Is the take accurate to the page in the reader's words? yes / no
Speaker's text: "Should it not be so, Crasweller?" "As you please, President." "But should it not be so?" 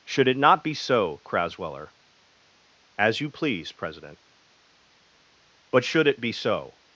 no